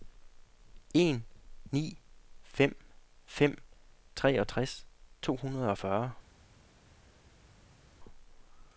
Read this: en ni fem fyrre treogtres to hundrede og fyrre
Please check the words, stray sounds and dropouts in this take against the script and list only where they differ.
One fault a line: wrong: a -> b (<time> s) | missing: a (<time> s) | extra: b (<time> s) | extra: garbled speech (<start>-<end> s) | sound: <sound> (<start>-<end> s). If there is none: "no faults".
wrong: fyrre -> fem (3.2 s)